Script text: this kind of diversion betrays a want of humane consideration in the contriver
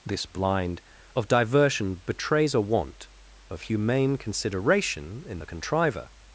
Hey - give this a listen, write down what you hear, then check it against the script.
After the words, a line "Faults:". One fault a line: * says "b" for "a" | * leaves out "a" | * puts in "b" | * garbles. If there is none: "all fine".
this blind of diversion betrays a want of humane consideration in the contriver
Faults:
* says "blind" for "kind"